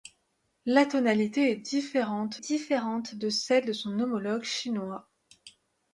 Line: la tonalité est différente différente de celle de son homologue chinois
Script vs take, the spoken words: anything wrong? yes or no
no